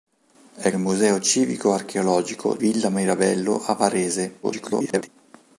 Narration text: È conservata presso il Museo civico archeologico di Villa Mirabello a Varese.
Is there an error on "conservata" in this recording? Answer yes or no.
yes